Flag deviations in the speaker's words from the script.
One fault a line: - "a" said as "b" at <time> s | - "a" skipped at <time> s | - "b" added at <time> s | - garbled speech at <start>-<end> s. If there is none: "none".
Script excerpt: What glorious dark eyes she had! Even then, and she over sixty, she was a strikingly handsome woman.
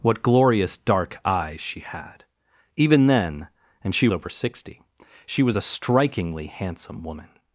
none